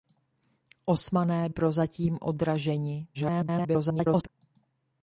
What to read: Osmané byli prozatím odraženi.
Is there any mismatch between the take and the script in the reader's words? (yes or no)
yes